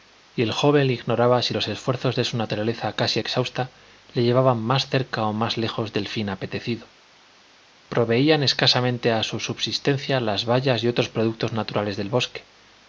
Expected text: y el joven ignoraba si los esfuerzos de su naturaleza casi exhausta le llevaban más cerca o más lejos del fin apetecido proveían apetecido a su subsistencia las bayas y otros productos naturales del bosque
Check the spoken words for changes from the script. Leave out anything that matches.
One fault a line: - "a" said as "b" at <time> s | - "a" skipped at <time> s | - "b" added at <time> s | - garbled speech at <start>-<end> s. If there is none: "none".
- "apetecido" said as "escasamente" at 8.4 s